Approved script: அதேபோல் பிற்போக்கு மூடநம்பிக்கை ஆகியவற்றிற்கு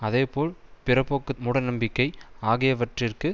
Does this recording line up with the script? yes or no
yes